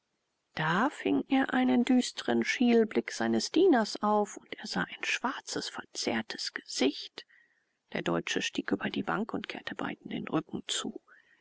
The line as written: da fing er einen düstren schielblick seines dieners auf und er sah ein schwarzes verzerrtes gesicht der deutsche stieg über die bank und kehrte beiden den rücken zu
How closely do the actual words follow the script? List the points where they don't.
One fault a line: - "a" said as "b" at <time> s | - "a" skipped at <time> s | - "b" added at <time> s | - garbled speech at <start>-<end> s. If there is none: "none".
none